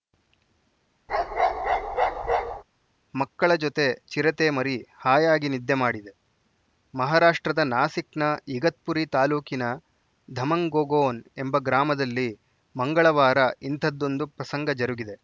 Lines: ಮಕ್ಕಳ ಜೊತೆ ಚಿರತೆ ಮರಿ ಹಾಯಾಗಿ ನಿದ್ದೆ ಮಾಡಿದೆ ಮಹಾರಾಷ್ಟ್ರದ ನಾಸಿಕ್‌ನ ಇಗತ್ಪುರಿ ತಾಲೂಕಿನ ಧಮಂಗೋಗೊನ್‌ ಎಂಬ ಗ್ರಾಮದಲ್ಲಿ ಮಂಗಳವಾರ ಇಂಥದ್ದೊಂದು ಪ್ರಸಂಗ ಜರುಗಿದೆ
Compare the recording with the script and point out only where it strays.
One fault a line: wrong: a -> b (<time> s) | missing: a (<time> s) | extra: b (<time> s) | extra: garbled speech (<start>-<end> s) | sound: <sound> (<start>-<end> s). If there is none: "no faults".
sound: bark (1.1-2.6 s)